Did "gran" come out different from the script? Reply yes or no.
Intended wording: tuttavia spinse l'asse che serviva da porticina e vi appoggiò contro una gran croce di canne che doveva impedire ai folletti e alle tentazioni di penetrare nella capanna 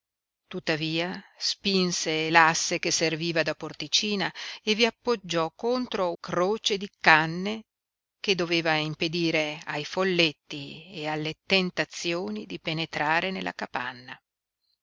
yes